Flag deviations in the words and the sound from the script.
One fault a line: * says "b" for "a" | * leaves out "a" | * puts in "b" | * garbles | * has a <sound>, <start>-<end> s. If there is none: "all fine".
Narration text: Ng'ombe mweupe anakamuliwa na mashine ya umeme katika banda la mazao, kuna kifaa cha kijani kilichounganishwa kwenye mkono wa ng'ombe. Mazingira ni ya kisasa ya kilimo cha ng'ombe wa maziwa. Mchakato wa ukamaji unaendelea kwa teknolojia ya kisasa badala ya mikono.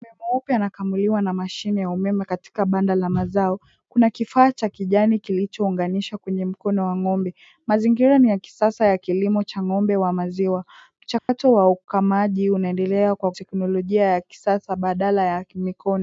* has a dropout, 11.2-11.3 s